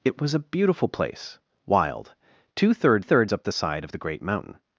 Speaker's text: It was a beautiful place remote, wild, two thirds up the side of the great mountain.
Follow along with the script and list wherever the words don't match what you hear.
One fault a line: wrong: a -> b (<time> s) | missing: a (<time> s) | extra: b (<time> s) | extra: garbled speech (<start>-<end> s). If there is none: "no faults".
missing: remote (1.4 s)
extra: thirds (3.0 s)